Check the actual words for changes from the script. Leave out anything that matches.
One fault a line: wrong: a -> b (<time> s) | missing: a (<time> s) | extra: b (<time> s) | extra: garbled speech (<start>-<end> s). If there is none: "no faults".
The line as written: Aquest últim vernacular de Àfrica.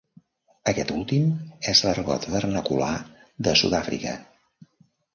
extra: és l'argot (1.7 s)
extra: Sud (3.6 s)